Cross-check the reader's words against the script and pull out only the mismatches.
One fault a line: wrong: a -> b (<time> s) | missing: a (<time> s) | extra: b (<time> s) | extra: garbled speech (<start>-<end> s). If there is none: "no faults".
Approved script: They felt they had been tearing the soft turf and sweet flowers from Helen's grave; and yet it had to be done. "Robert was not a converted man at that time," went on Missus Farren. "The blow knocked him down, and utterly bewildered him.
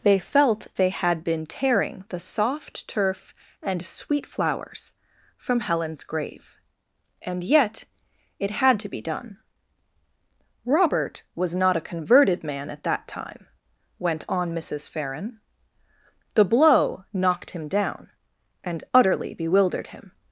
no faults